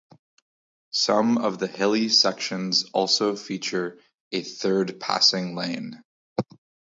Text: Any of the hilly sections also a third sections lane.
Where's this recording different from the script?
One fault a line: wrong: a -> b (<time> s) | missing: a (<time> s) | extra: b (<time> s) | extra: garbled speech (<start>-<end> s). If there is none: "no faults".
wrong: Any -> Some (0.9 s)
extra: feature (3.4 s)
wrong: sections -> passing (5.0 s)